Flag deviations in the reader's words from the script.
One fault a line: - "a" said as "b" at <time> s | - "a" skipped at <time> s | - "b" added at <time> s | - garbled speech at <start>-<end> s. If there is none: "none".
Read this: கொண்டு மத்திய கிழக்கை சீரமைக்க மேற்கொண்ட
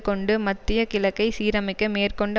none